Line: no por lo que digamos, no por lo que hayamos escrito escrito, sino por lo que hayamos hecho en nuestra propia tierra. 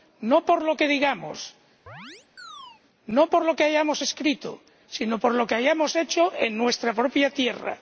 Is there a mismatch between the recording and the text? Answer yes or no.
yes